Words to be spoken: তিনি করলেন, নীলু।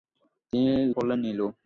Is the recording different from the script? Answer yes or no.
no